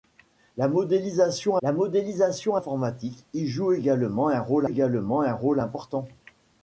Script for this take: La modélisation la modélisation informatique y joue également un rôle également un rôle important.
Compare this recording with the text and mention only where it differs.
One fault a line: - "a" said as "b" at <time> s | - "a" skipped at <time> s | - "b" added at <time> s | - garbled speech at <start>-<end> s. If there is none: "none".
none